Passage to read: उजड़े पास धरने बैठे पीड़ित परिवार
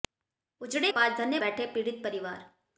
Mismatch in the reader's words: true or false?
false